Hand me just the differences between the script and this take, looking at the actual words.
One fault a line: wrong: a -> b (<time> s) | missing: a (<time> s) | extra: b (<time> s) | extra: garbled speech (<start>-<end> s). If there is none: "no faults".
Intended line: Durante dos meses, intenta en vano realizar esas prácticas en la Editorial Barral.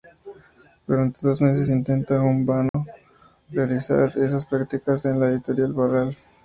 no faults